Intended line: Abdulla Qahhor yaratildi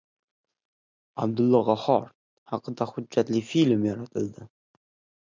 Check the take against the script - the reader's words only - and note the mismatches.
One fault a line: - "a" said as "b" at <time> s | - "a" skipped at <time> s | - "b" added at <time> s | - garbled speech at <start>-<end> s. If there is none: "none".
- "haqida hujjatli film" added at 2.5 s